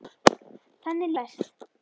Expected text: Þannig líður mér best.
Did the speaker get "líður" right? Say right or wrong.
wrong